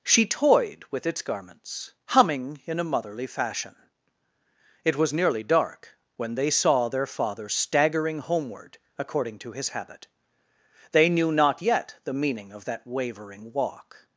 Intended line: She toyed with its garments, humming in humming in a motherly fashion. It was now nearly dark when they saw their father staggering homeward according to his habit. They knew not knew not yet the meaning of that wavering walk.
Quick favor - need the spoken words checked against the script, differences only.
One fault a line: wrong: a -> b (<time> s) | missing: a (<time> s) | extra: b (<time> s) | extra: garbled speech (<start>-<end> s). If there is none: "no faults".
missing: humming in (2.8 s)
missing: now (5.1 s)
missing: knew not (11.6 s)